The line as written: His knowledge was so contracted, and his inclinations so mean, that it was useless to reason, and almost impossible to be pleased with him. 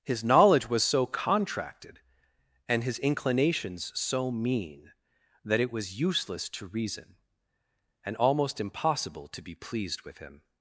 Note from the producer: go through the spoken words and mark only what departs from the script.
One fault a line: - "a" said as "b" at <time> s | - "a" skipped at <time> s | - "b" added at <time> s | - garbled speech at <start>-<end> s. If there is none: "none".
none